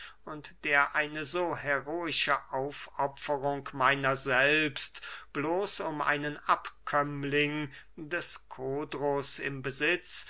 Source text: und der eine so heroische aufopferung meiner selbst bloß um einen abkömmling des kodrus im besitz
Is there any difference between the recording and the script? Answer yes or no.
no